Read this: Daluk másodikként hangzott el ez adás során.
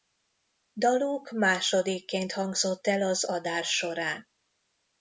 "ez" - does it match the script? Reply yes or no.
no